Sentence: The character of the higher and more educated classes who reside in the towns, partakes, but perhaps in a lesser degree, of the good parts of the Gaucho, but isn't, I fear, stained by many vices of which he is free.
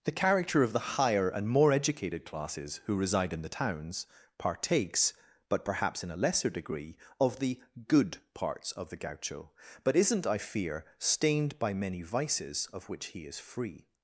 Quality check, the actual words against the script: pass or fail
pass